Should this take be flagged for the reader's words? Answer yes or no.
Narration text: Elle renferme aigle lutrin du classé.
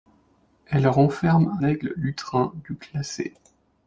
no